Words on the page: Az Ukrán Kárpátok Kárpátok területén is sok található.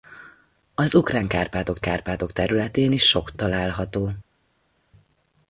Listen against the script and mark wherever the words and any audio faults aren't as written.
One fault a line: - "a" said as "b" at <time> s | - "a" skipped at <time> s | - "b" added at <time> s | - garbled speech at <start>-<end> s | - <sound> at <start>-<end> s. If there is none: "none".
none